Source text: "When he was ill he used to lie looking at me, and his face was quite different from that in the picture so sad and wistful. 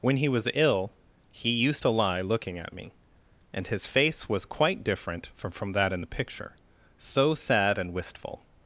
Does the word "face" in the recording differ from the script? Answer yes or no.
no